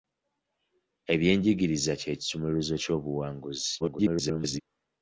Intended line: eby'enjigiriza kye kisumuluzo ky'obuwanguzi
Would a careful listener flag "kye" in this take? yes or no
no